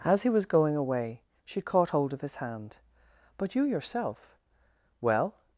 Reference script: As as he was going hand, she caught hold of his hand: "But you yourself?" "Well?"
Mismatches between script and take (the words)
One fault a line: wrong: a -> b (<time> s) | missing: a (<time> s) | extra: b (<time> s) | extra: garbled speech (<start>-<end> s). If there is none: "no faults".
missing: as (0.2 s)
wrong: hand -> away (0.8 s)